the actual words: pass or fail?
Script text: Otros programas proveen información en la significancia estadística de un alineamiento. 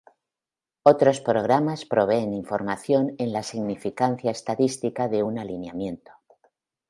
pass